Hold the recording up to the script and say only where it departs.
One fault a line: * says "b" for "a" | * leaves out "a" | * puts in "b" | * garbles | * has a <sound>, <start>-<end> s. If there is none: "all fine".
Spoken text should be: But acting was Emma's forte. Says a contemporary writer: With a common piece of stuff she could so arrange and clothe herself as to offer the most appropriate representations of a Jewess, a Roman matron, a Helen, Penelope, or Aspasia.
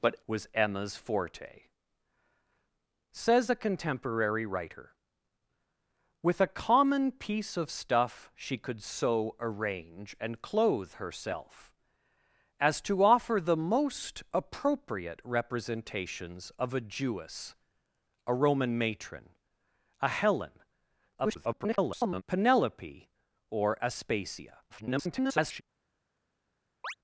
* leaves out "acting"
* garbles
* garbles
* has a chirp, 26.8-26.9 s